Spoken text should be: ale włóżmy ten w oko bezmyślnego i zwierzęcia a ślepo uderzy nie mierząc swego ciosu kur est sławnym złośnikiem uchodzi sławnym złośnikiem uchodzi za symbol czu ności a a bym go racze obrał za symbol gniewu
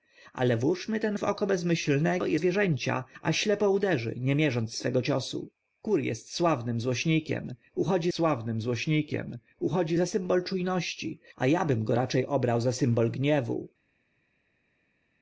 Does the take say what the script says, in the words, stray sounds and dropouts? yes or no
yes